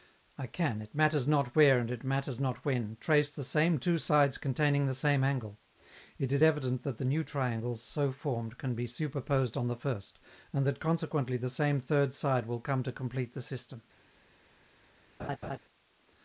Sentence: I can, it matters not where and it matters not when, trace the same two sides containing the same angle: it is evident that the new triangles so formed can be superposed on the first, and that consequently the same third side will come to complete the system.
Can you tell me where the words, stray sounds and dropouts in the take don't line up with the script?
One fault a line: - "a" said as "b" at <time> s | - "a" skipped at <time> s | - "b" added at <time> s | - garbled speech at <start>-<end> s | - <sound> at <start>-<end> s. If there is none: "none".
- laugh at 15.2-15.6 s